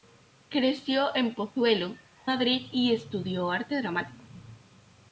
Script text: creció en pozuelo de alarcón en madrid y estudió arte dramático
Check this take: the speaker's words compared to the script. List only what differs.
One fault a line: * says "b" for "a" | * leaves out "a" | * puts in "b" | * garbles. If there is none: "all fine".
* leaves out "de alarcón en"